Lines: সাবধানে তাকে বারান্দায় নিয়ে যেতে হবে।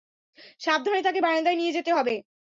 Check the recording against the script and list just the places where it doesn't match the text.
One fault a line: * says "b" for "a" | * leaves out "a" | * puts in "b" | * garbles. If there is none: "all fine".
all fine